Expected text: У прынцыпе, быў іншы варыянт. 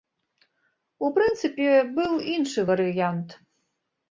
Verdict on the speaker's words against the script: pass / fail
pass